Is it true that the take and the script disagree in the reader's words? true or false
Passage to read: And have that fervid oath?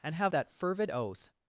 false